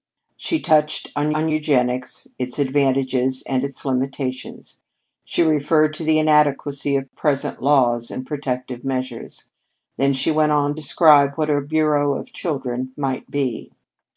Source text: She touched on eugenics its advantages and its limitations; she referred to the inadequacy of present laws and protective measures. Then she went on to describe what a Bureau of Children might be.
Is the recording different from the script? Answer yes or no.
yes